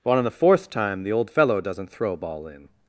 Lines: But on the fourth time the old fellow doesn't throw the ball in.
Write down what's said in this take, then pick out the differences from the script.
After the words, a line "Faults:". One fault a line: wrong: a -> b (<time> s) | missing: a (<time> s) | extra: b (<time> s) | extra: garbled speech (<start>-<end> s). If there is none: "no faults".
But on the fourth time the old fellow doesn't throw ball in.
Faults:
missing: the (2.2 s)